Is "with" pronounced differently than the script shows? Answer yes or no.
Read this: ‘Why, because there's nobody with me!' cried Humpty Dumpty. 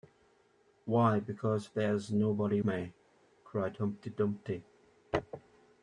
yes